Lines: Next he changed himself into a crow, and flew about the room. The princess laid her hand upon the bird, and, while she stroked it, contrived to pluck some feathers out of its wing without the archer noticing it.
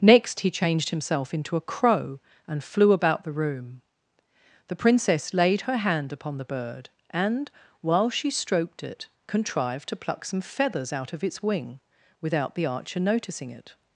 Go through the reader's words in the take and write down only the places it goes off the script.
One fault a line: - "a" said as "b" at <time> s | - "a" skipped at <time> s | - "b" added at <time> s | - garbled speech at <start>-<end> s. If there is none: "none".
none